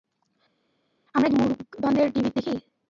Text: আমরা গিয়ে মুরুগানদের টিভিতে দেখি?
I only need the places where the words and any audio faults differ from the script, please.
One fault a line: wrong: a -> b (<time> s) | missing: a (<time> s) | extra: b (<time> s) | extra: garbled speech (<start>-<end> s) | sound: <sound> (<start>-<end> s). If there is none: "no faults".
missing: গিয়ে (1.3 s)